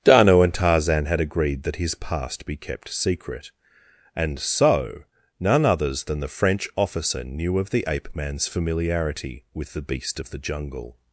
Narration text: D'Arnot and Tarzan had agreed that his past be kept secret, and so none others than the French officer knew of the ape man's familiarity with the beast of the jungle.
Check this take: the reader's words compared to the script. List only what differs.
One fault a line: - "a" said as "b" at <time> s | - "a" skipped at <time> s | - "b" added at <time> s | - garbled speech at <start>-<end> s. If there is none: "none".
none